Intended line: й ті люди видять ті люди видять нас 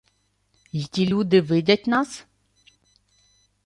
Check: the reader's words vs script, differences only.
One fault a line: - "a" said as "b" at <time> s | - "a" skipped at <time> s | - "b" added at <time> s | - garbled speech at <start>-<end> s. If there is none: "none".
- "ті люди видять" skipped at 1.9 s